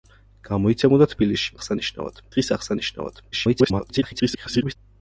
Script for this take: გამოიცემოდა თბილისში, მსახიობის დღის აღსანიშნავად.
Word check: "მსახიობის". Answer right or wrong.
wrong